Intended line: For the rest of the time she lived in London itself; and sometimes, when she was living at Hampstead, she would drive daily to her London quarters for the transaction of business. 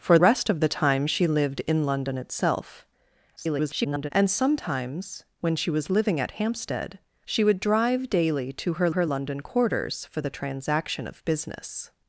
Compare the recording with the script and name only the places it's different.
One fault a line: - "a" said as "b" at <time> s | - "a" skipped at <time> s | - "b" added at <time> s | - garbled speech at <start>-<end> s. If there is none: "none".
- "the" skipped at 0.2 s
- garbled speech at 3.4-4.1 s
- "her" added at 8.9 s